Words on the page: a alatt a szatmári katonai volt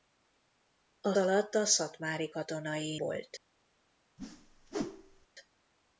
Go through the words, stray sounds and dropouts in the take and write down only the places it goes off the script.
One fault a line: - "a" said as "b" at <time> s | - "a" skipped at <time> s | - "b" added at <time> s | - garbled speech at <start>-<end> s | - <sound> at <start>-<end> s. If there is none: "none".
- whoosh at 4.2-5.3 s